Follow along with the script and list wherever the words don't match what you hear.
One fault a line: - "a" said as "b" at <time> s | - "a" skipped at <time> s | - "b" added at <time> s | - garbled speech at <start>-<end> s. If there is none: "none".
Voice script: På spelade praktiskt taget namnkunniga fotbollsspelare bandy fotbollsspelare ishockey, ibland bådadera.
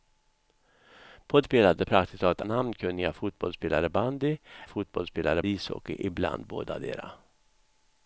none